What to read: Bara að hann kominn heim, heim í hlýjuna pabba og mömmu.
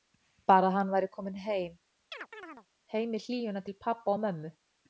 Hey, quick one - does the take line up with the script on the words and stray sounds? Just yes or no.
no